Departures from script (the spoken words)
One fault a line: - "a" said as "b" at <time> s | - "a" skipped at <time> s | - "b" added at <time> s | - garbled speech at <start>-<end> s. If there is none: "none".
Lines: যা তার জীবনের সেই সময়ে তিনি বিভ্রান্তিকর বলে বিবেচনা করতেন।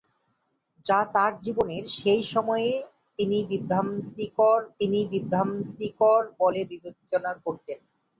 - "তিনি বিভ্রান্তিকর" added at 4.8 s